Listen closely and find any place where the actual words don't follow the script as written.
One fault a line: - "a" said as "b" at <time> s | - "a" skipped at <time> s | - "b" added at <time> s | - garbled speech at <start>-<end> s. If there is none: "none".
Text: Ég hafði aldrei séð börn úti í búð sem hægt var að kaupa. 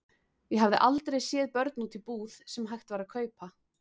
none